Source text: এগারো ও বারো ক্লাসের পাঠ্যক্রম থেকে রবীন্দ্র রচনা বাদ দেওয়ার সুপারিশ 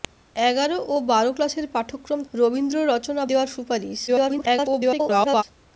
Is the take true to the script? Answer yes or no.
no